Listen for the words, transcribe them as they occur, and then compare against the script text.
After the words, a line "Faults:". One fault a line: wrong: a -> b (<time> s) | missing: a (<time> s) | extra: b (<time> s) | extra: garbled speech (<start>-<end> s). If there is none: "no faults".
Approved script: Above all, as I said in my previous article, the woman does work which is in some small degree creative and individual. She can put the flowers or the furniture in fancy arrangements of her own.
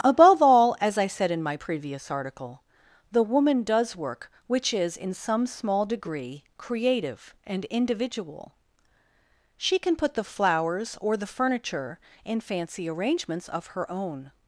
Above all, as I said in my previous article, the woman does work which is in some small degree creative and individual. She can put the flowers or the furniture in fancy arrangements of her own.
Faults:
no faults